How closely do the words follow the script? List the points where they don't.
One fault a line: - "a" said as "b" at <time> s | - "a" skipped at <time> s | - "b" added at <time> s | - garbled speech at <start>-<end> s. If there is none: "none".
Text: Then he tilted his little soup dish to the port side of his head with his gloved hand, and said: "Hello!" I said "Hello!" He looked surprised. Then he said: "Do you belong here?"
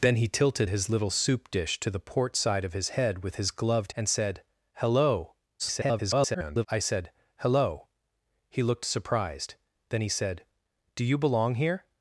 - "hand" skipped at 3.9 s
- garbled speech at 5.6-6.7 s